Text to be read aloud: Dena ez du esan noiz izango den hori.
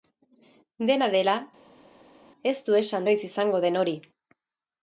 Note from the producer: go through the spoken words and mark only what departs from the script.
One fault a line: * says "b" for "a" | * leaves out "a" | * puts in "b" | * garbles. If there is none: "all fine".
* puts in "dela"